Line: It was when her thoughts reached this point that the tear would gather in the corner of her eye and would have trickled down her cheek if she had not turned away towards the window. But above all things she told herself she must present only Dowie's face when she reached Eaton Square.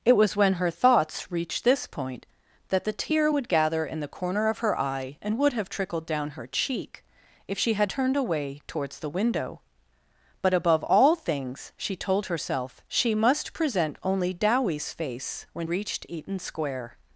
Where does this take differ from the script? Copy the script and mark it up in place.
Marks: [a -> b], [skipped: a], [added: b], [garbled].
It was when her thoughts reached this point that the tear would gather in the corner of her eye and would have trickled down her cheek if she had [skipped: not] turned away towards the window. But above all things she told herself she must present only Dowie's face when [skipped: she] reached Eaton Square.